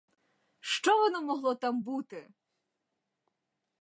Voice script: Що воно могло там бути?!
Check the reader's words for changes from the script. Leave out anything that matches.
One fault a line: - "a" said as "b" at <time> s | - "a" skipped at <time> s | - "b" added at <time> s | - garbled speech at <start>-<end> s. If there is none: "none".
none